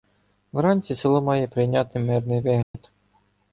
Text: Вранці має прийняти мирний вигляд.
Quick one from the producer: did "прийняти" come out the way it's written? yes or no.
yes